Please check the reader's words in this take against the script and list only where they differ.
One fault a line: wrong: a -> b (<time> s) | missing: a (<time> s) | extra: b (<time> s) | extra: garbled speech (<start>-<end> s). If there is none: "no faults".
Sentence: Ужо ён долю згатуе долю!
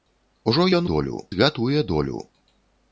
no faults